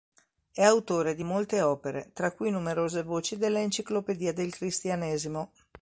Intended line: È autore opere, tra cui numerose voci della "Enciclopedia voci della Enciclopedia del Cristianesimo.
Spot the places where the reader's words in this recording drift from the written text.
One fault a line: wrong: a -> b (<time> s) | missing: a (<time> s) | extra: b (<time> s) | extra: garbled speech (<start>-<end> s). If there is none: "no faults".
extra: di molte (1.1 s)
missing: voci della Enciclopedia (4.3 s)